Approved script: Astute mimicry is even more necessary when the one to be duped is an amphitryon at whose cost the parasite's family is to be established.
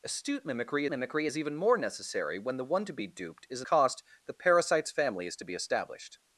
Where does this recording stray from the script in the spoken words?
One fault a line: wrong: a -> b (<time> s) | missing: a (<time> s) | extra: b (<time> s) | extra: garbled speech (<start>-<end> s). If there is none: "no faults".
extra: mimicry (0.9 s)
missing: amphitryon at whose (3.7 s)